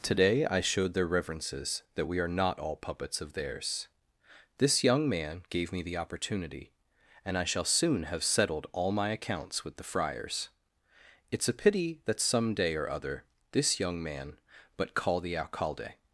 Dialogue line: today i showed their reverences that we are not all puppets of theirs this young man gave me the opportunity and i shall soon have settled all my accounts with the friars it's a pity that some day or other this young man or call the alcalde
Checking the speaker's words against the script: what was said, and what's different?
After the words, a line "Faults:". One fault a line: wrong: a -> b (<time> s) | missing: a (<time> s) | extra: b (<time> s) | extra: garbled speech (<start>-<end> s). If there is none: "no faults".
today i showed their reverences that we are not all puppets of theirs this young man gave me the opportunity and i shall soon have settled all my accounts with the friars it's a pity that some day or other this young man but call the alcalde
Faults:
wrong: or -> but (14.8 s)